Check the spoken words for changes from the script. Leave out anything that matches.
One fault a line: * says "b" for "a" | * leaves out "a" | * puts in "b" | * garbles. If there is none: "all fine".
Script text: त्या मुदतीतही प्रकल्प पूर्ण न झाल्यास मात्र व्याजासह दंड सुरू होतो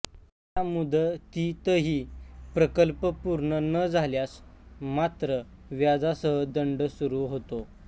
all fine